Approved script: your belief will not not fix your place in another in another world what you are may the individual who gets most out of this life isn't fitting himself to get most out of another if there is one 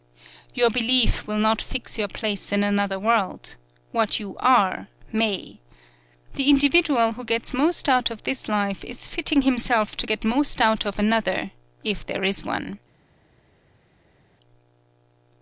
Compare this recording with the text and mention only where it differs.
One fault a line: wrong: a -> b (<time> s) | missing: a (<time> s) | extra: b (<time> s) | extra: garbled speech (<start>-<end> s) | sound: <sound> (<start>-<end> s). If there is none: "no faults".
missing: not (1.6 s)
missing: in another (3.0 s)
wrong: isn't -> is (8.8 s)